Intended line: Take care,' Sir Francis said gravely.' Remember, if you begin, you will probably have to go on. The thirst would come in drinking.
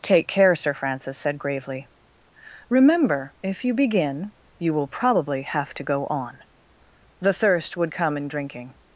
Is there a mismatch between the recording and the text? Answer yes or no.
no